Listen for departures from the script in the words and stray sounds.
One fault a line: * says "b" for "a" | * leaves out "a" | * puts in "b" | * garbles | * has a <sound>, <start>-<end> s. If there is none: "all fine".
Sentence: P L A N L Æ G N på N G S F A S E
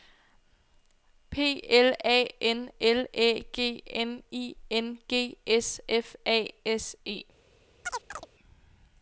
* says "I" for "på"
* has a chirp, 7.8-8.3 s